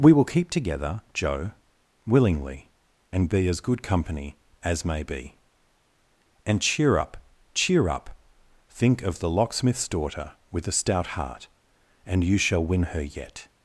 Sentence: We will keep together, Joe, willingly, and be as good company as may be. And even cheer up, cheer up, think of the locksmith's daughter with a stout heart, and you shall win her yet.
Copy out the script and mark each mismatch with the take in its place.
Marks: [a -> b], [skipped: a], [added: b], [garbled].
We will keep together, Joe, willingly, and be as good company as may be. And [skipped: even] cheer up, cheer up, think of the locksmith's daughter with a stout heart, and you shall win her yet.